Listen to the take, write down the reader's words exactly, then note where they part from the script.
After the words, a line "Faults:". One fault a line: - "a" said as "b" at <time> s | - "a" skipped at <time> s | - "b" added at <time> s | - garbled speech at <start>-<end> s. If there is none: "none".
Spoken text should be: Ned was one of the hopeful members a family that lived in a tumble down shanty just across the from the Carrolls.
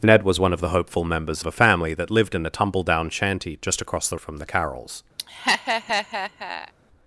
Ned was one of the hopeful members a family that lived in a tumble down shanty just across the from the Carrolls.
Faults:
none